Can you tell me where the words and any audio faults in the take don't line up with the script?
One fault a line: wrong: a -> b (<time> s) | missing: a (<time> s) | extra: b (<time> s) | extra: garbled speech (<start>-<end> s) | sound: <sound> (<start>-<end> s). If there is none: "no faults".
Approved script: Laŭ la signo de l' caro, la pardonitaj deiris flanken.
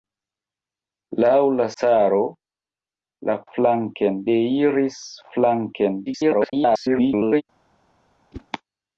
missing: signo de l (1.7 s)
wrong: pardonitaj -> flanken (3.6 s)
extra: garbled speech (6.1-7.4 s)
sound: whoosh (8.3-8.5 s)